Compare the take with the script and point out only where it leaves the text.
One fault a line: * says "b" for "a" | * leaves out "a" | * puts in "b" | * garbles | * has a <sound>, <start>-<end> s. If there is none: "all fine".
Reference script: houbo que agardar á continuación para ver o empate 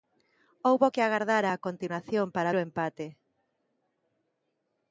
* leaves out "ver"